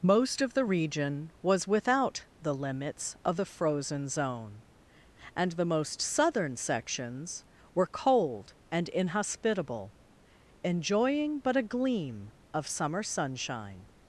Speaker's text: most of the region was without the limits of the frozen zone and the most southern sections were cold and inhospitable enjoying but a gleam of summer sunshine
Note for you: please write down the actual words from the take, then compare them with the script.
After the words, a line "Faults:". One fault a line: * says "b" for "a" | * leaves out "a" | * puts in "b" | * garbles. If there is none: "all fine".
most of the region was without the limits of the frozen zone and the most southern sections were cold and inhospitable enjoying but a gleam of summer sunshine
Faults:
all fine